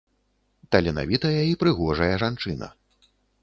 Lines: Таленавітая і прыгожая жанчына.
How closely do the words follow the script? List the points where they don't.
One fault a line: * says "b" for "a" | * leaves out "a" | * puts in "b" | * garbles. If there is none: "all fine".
all fine